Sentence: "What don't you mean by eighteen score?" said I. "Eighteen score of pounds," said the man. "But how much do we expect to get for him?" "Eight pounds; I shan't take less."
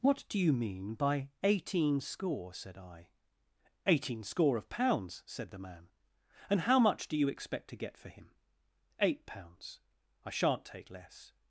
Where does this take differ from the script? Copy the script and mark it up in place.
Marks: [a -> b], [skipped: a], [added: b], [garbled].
"What [don't -> do] you mean by eighteen score?" said I. "Eighteen score of pounds," said the man. ["But -> And] how much do [we -> you] expect to get for him?" "Eight pounds; I shan't take less."